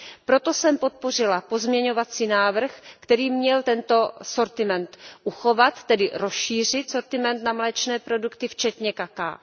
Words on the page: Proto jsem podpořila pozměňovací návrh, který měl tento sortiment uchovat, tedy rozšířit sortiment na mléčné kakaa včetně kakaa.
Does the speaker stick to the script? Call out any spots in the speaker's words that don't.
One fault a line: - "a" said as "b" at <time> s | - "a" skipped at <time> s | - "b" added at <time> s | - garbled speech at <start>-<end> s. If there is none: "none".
- "kakaa" said as "produkty" at 8.0 s